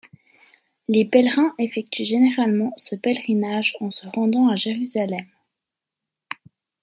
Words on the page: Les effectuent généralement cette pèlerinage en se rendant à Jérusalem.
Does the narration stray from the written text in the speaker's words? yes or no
yes